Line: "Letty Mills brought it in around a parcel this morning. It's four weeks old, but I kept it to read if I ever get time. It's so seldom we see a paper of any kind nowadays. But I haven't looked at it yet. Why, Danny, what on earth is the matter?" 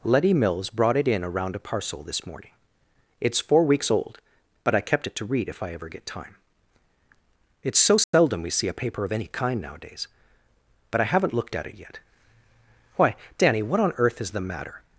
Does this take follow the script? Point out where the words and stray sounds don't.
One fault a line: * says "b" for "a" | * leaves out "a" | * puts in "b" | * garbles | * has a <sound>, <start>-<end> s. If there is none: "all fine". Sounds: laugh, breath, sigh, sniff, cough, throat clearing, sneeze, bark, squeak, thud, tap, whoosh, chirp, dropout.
* has a dropout, 8.0-8.1 s